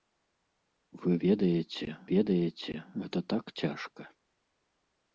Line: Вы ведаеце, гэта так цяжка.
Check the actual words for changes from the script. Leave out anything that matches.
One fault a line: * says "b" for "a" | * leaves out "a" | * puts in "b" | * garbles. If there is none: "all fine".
* puts in "ведаеце"